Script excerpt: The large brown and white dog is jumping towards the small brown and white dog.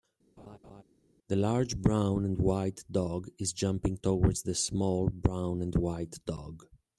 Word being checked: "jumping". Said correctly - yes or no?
yes